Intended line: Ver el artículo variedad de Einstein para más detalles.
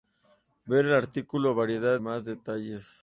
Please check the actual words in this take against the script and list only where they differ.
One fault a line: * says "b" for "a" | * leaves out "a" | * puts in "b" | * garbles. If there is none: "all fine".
* leaves out "de Einstein para"